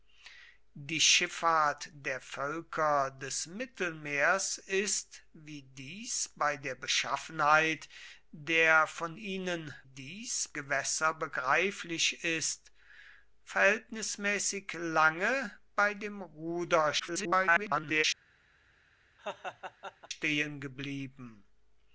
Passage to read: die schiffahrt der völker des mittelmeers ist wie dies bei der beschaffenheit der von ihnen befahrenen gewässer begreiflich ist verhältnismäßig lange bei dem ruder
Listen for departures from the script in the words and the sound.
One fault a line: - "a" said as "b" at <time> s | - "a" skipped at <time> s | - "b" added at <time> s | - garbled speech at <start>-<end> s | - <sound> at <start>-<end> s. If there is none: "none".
- "befahrenen" said as "dies" at 9.8 s
- garbled speech at 17.0-18.0 s
- laugh at 19.2-20.1 s